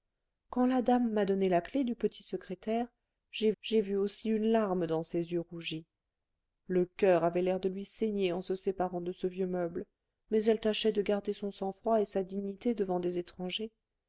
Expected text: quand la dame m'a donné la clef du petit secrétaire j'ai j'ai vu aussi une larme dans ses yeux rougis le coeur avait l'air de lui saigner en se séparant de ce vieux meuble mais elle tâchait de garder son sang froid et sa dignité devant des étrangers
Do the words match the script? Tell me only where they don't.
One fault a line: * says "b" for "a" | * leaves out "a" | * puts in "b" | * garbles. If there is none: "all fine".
all fine